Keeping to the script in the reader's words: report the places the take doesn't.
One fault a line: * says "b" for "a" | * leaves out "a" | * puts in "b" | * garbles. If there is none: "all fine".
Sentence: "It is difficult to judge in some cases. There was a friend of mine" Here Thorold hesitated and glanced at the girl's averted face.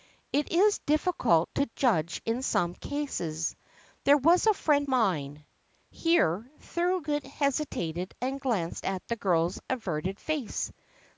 * leaves out "of"